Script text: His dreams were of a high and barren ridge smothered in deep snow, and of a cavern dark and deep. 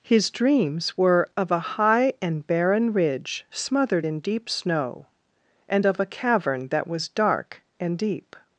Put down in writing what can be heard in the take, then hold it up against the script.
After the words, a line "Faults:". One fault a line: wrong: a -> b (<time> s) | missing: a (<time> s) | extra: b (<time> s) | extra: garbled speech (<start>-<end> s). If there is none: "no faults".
His dreams were of a high and barren ridge smothered in deep snow, and of a cavern that was dark and deep.
Faults:
extra: that was (6.7 s)